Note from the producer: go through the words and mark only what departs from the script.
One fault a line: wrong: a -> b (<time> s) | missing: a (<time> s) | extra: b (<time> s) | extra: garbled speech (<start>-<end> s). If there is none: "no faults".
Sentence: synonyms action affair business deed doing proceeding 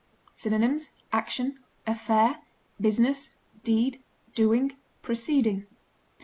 no faults